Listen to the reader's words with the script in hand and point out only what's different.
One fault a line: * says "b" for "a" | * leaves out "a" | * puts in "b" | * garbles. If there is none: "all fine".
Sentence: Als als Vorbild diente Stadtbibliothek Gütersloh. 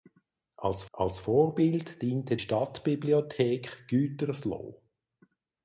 all fine